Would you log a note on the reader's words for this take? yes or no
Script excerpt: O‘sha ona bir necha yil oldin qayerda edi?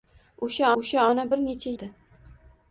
yes